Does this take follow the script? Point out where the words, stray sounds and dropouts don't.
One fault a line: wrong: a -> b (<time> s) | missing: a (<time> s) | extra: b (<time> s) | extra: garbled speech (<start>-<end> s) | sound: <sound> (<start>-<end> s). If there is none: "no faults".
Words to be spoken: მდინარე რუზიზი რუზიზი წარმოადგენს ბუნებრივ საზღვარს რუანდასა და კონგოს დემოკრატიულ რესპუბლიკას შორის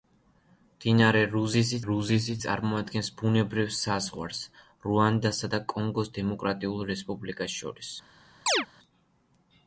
sound: chirp (8.5-8.7 s)